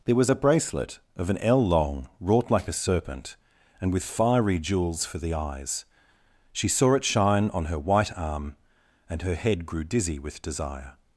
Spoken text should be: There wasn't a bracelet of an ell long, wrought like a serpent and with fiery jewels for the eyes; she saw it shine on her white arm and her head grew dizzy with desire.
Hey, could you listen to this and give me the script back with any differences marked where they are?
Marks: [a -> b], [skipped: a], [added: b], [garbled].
There [wasn't -> was] a bracelet of an ell long, wrought like a serpent and with fiery jewels for the eyes; she saw it shine on her white arm and her head grew dizzy with desire.